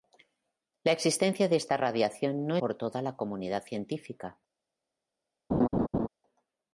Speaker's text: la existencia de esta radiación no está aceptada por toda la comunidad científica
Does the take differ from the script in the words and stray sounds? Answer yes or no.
yes